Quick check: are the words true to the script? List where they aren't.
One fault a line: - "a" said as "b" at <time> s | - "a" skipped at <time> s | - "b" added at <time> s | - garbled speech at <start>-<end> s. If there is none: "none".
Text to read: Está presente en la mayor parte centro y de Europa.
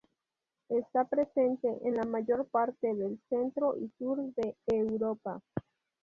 - "del" added at 3.0 s
- "sur" added at 4.0 s